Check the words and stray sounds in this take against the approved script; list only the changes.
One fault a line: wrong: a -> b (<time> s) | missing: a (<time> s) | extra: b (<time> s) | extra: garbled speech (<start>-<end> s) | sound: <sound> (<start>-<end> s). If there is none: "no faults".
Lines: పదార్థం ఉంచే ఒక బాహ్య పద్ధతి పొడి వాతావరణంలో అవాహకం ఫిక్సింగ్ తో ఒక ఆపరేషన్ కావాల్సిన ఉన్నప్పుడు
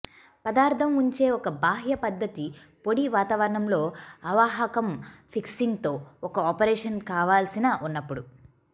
no faults